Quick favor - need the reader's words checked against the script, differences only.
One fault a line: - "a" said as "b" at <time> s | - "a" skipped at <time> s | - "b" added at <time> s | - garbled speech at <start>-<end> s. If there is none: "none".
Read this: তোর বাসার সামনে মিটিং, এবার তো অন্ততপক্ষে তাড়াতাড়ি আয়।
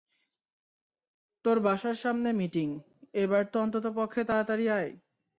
none